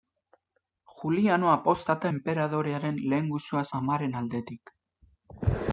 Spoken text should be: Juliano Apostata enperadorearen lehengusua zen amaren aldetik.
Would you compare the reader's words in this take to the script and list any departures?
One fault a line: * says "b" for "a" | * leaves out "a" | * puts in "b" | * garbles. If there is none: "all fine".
* leaves out "zen"